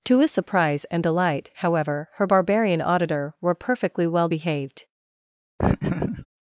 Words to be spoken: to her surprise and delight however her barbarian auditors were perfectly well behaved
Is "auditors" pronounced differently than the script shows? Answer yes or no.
yes